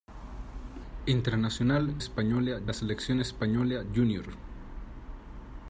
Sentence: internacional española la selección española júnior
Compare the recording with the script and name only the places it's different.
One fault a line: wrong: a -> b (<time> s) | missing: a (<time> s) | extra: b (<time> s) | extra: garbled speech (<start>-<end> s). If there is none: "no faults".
no faults